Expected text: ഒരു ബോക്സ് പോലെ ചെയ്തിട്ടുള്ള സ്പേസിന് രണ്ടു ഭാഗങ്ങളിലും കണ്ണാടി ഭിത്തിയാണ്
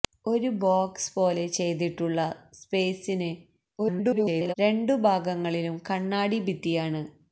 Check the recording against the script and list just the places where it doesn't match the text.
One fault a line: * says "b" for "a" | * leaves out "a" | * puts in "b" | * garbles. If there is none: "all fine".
* garbles